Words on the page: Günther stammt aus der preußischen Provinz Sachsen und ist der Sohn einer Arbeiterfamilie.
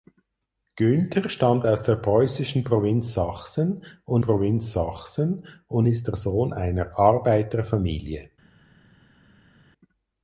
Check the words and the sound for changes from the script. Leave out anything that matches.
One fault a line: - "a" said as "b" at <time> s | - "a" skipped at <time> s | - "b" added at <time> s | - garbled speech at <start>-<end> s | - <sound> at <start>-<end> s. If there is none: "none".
- "Provinz Sachsen und" added at 4.2 s